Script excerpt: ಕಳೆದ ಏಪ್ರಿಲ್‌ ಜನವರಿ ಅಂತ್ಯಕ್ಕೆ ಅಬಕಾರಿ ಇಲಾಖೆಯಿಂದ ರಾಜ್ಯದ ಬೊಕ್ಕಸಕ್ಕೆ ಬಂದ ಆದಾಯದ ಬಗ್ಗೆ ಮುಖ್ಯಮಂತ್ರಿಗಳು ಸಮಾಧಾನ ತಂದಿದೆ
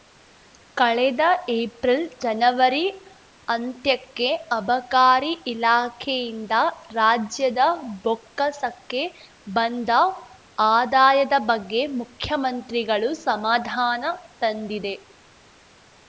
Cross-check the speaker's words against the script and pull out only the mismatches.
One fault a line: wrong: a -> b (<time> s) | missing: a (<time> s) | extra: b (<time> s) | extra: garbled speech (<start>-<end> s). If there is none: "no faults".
no faults